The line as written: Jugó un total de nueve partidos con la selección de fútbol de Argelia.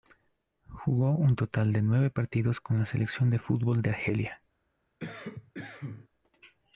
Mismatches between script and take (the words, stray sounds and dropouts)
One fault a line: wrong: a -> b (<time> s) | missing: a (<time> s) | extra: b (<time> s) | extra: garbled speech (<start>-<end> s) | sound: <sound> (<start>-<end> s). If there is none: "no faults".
sound: cough (5.0-6.1 s)